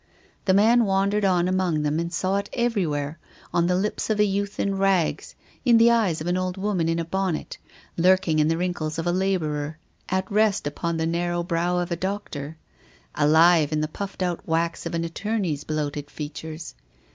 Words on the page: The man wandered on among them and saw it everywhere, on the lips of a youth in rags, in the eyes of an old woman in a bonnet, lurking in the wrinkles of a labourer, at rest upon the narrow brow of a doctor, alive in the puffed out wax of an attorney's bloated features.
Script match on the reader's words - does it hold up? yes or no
yes